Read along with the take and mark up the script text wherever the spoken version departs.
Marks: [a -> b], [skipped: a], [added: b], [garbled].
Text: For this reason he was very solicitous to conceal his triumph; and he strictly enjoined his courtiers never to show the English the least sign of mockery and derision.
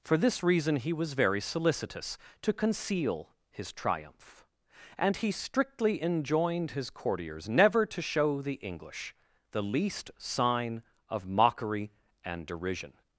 For this reason he was very solicitous to conceal his triumph; and he strictly enjoined his courtiers never to show the English the least sign of mockery and derision.